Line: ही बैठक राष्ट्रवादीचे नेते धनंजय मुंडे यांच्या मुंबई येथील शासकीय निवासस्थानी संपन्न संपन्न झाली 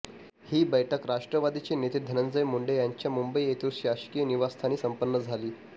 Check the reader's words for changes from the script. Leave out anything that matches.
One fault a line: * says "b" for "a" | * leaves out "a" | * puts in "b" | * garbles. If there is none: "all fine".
* leaves out "संपन्न"